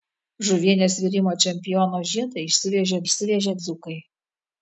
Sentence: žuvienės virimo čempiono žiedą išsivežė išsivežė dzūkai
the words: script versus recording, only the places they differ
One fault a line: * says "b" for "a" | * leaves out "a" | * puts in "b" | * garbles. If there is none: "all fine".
all fine